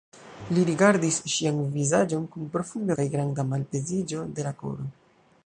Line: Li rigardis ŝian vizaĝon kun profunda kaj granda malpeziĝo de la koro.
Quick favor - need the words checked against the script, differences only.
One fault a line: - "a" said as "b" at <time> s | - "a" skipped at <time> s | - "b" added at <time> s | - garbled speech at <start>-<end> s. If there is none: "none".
none